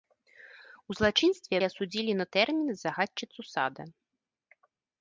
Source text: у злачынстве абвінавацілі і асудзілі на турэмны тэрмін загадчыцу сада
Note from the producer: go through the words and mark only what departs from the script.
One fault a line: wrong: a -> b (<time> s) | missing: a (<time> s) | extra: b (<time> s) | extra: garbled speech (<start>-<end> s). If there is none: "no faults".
missing: абвінавацілі (1.5 s)
missing: турэмны (2.3 s)